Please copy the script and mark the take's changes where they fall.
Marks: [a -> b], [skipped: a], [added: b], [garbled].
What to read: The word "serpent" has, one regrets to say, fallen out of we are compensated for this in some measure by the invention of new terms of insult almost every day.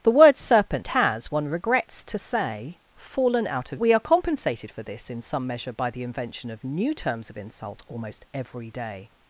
The word "serpent" has, one regrets to say, fallen out of we are compensated for this in some measure by the invention of new terms of insult almost every day.